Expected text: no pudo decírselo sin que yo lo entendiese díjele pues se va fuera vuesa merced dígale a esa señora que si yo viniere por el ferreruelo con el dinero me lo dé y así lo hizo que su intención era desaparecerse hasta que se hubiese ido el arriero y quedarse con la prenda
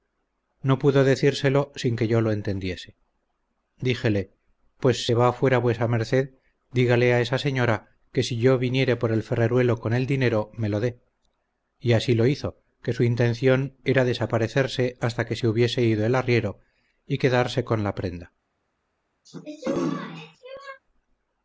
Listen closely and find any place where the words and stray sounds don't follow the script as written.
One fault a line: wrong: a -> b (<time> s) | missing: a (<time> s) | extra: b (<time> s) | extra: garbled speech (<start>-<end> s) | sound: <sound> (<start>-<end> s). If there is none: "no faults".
sound: throat clearing (19.3-20.8 s)